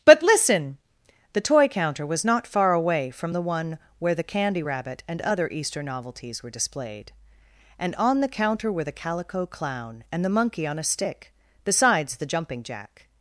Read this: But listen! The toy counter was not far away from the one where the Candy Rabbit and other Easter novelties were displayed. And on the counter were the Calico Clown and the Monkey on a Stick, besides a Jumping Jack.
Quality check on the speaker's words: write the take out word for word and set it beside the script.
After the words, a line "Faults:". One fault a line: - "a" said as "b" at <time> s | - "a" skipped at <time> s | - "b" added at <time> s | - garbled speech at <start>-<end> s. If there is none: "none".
But listen! The toy counter was not far away from the one where the Candy Rabbit and other Easter novelties were displayed. And on the counter were the Calico Clown and the Monkey on a Stick, besides the Jumping Jack.
Faults:
- "a" said as "the" at 12.2 s